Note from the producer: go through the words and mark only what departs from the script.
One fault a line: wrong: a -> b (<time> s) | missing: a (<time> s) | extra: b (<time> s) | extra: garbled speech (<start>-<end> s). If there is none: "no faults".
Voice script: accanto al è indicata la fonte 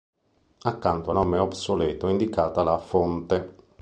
extra: nome obsoleto (1.1 s)